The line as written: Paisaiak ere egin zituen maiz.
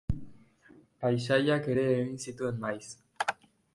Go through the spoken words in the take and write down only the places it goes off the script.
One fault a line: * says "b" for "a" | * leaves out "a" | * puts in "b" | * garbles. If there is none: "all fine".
all fine